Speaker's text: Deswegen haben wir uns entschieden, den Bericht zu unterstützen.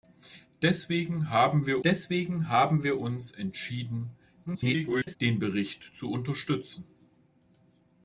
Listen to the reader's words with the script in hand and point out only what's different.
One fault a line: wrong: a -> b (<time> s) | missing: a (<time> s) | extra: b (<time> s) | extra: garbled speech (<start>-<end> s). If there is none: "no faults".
extra: deswegen haben wir (1.8 s)
extra: garbled speech (4.5-5.2 s)